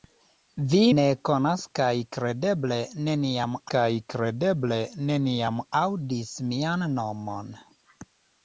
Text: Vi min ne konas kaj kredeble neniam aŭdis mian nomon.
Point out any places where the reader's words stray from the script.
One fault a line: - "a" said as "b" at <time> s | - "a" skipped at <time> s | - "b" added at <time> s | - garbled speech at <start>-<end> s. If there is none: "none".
- "min" skipped at 0.8 s
- "kaj kredeble neniam" added at 3.7 s